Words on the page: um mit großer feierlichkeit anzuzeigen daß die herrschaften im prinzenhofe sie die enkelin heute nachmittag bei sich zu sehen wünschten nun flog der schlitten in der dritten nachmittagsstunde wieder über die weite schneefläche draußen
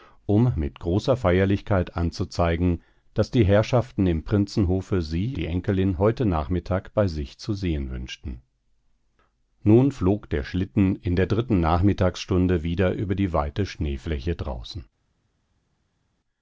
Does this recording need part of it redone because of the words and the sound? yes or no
no